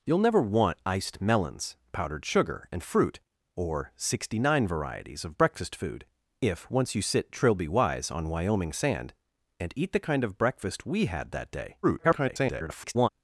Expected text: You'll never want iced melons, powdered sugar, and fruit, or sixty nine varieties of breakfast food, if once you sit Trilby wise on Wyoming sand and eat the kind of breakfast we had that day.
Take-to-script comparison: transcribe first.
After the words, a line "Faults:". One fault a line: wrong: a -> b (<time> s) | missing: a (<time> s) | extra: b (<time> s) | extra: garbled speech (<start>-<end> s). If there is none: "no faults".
You'll never want iced melons, powdered sugar, and fruit, or sixty nine varieties of breakfast food, if once you sit Trilby wise on Wyoming sand and eat the kind of breakfast we had that day. [garbled]
Faults:
extra: garbled speech (11.8-13.1 s)